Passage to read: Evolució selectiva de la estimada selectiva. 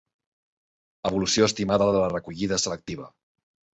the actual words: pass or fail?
fail